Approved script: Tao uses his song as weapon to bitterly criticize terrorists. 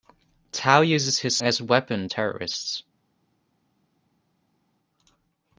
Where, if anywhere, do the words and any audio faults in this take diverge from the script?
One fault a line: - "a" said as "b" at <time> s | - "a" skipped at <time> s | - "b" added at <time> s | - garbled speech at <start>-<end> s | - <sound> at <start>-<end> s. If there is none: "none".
- "song" skipped at 1.4 s
- "to bitterly criticize" skipped at 2.1 s